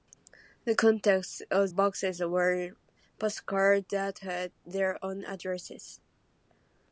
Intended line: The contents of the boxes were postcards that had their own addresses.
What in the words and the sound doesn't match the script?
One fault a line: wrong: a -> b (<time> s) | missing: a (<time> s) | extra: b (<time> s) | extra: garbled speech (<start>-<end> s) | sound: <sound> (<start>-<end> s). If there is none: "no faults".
missing: the (1.7 s)